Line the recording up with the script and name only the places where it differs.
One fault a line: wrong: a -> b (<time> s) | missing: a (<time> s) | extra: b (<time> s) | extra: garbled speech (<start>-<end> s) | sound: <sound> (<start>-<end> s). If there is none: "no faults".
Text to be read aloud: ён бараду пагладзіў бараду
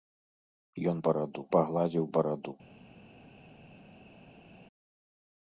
no faults